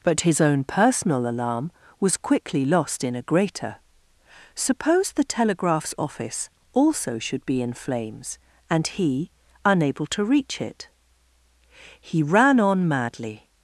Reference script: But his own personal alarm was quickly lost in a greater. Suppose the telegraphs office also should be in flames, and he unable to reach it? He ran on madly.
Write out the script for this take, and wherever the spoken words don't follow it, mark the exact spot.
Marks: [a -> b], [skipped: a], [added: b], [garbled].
But his own personal alarm was quickly lost in a greater. Suppose the telegraphs office also should be in flames, and he unable to reach it? He ran on madly.